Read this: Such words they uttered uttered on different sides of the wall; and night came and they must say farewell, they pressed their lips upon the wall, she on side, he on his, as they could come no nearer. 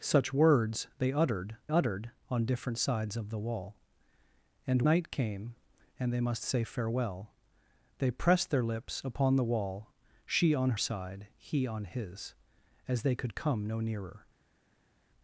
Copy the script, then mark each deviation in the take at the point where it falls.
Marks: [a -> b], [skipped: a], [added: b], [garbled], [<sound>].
Such words they uttered uttered on different sides of the wall; and night came and they must say farewell, they pressed their lips upon the wall, she on side, he on his, as they could come no nearer.